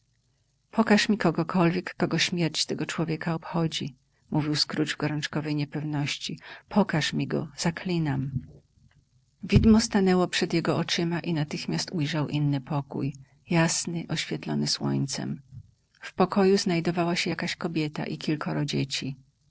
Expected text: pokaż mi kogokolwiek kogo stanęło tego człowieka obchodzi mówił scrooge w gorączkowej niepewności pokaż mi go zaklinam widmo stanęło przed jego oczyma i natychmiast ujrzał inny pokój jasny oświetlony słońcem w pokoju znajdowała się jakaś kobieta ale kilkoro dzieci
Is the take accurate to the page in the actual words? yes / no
no